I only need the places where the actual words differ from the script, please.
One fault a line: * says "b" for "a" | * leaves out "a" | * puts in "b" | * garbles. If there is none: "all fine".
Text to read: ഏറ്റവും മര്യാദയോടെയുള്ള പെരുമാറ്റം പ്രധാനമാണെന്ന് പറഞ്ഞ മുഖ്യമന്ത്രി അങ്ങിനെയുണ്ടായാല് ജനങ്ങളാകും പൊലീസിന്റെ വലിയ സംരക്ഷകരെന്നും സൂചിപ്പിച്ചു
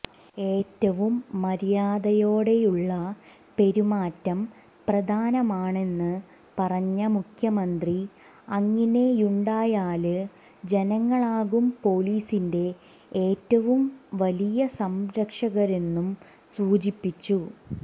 * puts in "ഏറ്റവും"